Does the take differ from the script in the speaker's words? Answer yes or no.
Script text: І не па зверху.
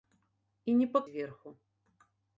no